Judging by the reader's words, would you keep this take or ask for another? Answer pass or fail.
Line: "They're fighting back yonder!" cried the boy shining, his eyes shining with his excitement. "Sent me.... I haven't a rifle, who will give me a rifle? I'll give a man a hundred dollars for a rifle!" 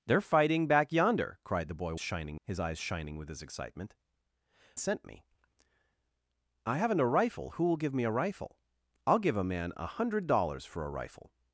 pass